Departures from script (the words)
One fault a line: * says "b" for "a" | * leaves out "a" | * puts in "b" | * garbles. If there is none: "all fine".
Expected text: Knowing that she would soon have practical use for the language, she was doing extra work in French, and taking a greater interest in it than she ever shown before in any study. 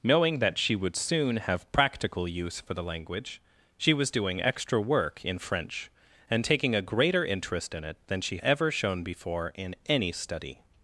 all fine